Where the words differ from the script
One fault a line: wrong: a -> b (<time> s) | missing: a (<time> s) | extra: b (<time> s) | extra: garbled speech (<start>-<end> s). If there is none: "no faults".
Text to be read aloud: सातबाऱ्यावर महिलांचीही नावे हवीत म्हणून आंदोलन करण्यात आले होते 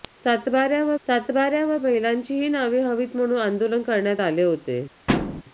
extra: सातबाऱ्यावर (1.0 s)